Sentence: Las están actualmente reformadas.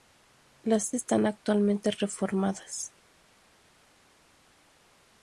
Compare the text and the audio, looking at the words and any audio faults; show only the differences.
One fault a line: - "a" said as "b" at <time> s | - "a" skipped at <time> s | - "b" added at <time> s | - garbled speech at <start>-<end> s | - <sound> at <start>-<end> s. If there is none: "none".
none